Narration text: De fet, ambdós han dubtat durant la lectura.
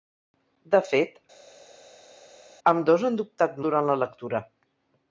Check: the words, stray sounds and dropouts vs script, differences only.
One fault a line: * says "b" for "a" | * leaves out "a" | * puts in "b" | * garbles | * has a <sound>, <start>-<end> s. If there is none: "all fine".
all fine